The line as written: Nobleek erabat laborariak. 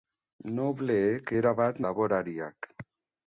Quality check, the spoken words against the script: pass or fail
pass